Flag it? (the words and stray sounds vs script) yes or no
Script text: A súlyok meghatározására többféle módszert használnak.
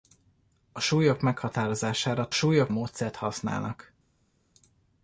yes